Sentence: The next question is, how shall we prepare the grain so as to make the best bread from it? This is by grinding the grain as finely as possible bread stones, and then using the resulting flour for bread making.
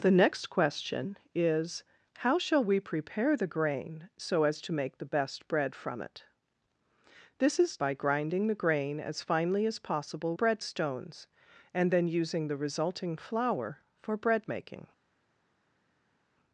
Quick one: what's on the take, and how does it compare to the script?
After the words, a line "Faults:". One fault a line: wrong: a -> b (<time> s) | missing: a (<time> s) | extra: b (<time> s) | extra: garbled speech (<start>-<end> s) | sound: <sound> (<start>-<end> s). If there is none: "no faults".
The next question is, how shall we prepare the grain so as to make the best bread from it? This is by grinding the grain as finely as possible bread stones, and then using the resulting flour for bread making.
Faults:
no faults